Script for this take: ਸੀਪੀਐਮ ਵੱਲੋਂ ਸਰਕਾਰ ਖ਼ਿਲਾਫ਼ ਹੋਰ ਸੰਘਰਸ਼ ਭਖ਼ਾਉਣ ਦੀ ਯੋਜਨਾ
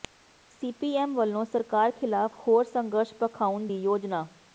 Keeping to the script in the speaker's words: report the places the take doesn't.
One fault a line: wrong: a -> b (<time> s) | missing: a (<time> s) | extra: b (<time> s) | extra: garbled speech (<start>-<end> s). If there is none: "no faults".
no faults